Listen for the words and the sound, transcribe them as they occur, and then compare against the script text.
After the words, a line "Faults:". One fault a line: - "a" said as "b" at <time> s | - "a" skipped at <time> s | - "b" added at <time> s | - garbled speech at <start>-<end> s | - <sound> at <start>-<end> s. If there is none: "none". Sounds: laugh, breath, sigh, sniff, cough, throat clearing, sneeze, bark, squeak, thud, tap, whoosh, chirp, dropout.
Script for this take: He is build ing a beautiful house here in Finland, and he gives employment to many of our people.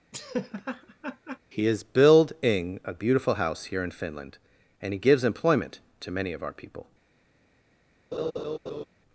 He is build ing a beautiful house here in Finland, and he gives employment to many of our people.
Faults:
- laugh at 0.1-1.4 s
- laugh at 8.1-8.9 s